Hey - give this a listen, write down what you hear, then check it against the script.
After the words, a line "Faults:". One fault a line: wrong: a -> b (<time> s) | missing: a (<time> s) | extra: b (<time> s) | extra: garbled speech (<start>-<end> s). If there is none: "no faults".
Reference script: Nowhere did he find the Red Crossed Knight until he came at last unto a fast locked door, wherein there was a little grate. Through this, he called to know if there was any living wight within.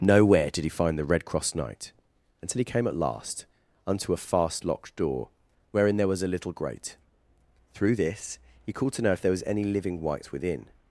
Nowhere did he find the Red Cross Knight until he came at last unto a fast locked door, wherein there was a little grate. Through this, he called to know if there was any living wight within.
Faults:
wrong: Crossed -> Cross (1.2 s)